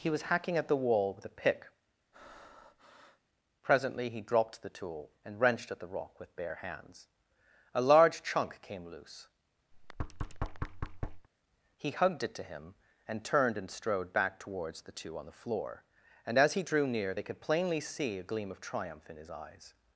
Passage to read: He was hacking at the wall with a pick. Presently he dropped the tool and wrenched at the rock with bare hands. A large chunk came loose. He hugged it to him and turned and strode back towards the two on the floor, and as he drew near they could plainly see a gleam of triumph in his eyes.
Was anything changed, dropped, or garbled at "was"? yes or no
no